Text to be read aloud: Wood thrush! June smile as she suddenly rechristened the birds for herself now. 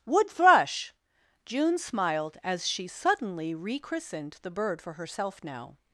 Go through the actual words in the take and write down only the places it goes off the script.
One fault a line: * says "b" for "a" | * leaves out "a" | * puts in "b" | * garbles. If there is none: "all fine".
* says "smiled" for "smile"
* says "bird" for "birds"